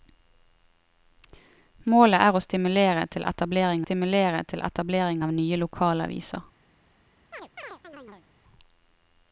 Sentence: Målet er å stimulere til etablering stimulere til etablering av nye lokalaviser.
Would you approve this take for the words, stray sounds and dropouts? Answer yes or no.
no